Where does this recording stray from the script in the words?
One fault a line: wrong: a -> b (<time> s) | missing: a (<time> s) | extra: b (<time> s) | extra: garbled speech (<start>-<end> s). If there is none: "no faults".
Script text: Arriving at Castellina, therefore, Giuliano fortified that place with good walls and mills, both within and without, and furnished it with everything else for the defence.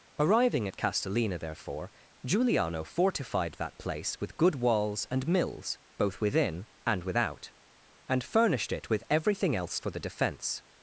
no faults